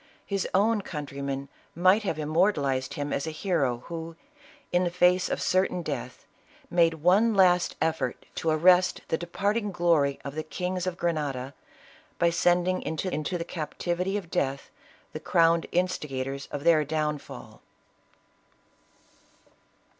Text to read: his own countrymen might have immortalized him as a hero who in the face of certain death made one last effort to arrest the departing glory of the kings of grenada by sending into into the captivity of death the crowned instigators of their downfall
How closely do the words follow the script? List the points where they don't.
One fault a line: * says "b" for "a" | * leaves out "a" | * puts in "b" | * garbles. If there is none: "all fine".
all fine